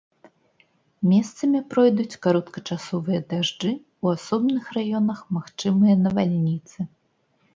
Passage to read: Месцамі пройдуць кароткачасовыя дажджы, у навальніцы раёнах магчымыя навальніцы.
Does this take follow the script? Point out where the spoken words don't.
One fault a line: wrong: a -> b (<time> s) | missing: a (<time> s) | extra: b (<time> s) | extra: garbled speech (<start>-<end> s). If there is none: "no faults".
wrong: навальніцы -> асобных (4.2 s)